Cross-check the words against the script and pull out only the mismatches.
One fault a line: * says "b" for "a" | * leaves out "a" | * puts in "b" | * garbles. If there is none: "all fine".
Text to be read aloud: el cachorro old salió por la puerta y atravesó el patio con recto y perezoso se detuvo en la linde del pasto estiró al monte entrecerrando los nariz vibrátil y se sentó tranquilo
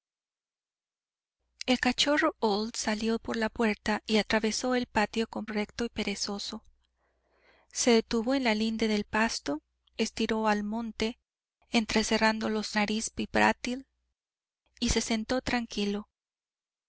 all fine